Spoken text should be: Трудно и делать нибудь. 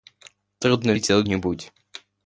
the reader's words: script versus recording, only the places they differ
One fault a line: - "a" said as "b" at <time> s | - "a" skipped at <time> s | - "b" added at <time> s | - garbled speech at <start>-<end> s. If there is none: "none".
none